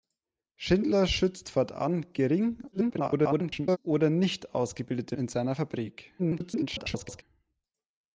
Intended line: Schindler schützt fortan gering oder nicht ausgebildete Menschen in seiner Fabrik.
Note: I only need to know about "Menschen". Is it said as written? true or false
false